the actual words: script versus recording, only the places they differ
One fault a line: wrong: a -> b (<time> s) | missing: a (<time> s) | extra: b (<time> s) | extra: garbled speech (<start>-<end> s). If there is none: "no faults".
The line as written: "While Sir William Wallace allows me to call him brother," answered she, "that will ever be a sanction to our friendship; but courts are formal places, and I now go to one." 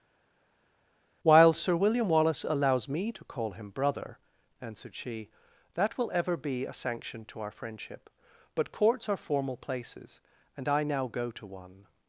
no faults